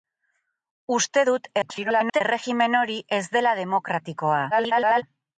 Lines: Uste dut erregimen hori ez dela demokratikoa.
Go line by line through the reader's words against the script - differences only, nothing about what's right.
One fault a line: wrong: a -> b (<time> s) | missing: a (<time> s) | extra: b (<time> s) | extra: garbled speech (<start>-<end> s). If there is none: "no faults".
extra: garbled speech (1.6-2.2 s)
extra: garbled speech (4.5-5.0 s)